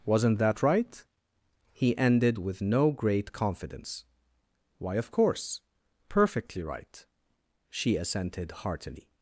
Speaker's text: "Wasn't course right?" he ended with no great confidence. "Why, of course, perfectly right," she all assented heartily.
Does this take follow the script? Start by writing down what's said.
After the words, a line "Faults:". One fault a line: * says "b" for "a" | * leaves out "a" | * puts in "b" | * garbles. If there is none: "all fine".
"Wasn't that right?" he ended with no great confidence. "Why, of course, perfectly right," she assented heartily.
Faults:
* says "that" for "course"
* leaves out "all"